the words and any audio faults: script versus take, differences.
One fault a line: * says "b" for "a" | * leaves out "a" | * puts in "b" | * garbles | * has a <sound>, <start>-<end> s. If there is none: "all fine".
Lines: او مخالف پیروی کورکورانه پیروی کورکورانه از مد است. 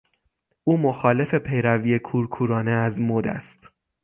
* leaves out "پیروی کورکورانه"